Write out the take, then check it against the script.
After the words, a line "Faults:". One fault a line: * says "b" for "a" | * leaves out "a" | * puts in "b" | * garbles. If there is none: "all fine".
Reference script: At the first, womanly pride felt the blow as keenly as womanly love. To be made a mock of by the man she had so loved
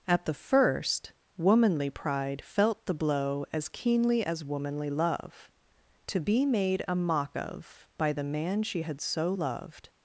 At the first, womanly pride felt the blow as keenly as womanly love. To be made a mock of by the man she had so loved
Faults:
all fine